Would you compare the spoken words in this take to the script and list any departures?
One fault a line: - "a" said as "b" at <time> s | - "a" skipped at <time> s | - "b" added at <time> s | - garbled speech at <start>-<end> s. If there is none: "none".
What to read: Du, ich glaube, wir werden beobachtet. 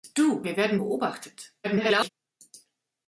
- "ich glaube" skipped at 0.4 s
- garbled speech at 1.6-2.1 s